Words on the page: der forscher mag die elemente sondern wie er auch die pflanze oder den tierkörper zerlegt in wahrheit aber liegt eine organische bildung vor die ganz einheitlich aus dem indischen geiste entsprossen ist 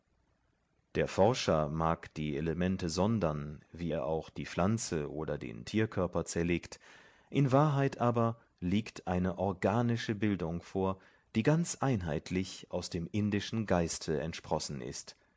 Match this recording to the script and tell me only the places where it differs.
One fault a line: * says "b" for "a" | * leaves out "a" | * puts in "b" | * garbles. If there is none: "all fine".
all fine